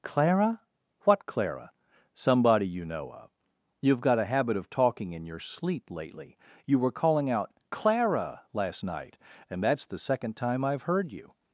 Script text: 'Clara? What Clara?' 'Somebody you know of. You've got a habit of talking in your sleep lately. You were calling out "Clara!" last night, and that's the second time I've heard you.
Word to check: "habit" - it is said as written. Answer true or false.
true